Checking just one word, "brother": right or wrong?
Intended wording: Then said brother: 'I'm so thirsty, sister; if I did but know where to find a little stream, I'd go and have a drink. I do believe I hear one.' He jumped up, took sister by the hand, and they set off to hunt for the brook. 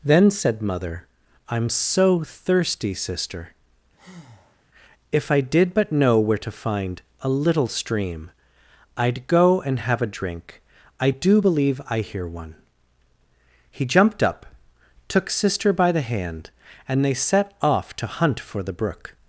wrong